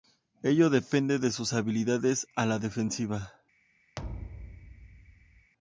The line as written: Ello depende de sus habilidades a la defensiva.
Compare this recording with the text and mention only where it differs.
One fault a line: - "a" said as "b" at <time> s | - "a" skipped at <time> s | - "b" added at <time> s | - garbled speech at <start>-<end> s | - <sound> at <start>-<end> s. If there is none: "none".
- thud at 4.0-5.5 s